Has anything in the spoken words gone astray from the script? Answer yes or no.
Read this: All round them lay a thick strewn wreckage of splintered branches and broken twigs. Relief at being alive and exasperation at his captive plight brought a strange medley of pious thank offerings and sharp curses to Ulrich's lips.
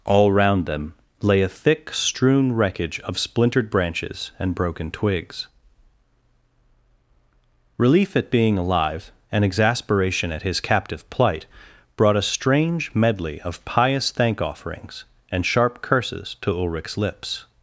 no